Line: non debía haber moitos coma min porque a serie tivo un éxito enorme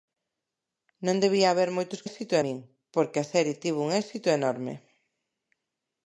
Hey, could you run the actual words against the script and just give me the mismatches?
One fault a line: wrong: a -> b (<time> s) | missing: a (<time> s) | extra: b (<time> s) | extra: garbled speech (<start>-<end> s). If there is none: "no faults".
wrong: coma -> éxito (2.1 s)